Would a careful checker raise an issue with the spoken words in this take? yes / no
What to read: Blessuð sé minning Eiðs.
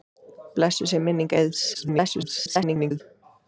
yes